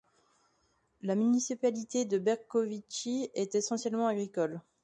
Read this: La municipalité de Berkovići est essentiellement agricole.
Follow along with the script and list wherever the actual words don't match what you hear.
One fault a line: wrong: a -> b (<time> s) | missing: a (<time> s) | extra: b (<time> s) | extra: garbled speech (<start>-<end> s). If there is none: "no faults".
no faults